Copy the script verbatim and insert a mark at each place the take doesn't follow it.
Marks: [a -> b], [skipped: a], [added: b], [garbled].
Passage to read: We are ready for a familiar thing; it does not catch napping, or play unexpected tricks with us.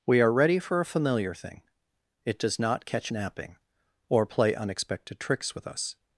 We are ready for a familiar thing; it does not catch napping, or play unexpected tricks with us.